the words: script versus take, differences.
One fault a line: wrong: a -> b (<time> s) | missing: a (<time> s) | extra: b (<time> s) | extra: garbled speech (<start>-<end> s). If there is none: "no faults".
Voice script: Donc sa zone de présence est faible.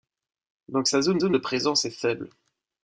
extra: zone (1.2 s)